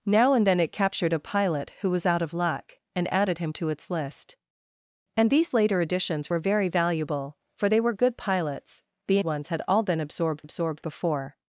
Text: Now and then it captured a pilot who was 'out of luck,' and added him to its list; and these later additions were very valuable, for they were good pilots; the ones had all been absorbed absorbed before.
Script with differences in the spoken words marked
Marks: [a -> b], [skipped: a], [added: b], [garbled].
Now and then it captured a pilot who was 'out of luck,' and added him to its list; and these later additions were very valuable, for they were good pilots; the ones had all been absorbed absorbed before.